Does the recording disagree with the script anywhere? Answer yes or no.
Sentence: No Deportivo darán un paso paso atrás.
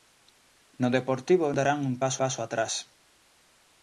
no